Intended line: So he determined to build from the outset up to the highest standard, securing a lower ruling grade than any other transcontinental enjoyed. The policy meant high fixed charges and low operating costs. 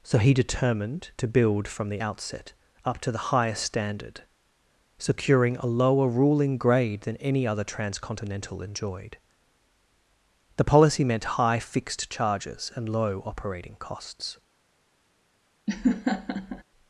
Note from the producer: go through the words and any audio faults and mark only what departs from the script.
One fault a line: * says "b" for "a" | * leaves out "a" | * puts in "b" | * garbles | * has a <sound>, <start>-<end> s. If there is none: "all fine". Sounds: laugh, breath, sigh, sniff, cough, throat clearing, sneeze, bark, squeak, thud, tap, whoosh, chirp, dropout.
* has a laugh, 15.7-16.6 s